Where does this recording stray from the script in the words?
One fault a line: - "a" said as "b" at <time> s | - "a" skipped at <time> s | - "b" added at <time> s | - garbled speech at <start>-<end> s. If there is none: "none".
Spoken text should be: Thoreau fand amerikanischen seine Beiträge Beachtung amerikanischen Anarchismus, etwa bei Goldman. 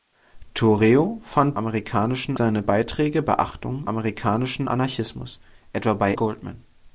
none